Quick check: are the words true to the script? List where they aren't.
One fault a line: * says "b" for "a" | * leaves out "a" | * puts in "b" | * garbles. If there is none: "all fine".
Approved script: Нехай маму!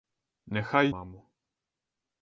all fine